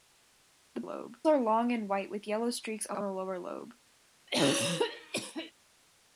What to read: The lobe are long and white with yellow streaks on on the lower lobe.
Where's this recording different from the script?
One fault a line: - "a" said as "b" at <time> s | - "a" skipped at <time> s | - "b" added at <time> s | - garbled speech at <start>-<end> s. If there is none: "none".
none